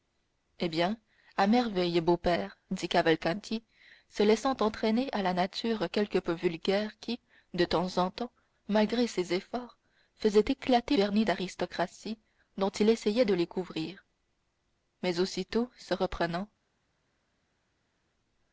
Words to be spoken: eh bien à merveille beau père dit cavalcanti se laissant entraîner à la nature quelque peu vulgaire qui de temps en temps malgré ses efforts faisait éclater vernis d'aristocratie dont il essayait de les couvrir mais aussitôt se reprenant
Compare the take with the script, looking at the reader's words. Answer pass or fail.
pass